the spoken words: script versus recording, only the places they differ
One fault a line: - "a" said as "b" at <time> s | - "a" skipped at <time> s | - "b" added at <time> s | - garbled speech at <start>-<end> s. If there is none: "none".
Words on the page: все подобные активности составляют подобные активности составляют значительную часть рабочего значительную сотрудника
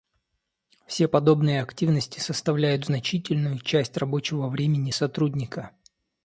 - "подобные активности составляют" skipped at 2.9 s
- "значительную" said as "времени" at 4.5 s